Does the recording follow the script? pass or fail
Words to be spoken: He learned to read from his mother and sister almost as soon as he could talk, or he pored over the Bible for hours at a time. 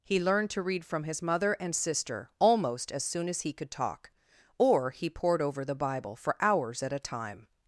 pass